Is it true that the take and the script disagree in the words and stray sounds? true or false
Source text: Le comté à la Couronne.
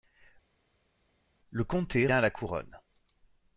false